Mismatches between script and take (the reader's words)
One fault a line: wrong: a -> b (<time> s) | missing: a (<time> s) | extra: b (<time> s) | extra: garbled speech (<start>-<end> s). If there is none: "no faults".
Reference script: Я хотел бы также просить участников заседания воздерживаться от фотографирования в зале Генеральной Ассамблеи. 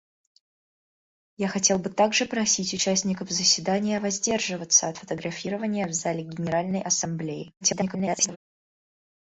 extra: garbled speech (7.6-8.4 s)